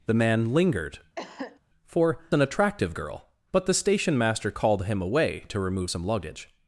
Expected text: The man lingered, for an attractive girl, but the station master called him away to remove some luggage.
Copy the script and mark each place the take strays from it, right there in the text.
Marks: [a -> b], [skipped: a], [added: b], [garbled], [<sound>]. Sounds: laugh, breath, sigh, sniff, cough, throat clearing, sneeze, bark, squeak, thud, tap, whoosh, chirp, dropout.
The man lingered, [cough] for an attractive girl, but the station master called him away to remove some luggage.